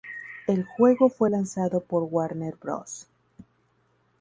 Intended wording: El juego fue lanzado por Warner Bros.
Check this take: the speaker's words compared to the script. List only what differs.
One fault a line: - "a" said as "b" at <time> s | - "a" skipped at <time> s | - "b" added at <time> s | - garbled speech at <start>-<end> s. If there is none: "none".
none